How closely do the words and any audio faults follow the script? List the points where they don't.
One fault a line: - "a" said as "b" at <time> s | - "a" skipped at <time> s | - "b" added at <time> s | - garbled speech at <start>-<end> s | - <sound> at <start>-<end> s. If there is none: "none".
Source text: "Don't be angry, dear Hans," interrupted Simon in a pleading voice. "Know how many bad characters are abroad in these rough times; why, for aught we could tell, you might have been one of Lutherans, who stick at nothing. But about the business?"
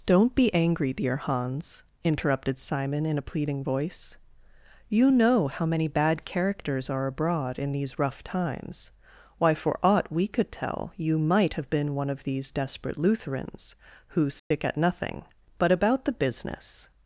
- "You" added at 4.9 s
- "these desperate" added at 12.2 s
- dropout at 14.4-14.5 s